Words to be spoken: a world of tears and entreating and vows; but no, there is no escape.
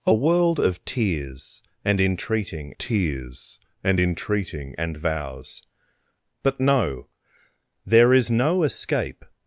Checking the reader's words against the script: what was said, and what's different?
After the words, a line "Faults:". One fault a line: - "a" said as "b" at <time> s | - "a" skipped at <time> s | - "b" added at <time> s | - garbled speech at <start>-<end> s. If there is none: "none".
a world of tears and entreating tears and entreating and vows; but no, there is no escape.
Faults:
- "tears and entreating" added at 2.8 s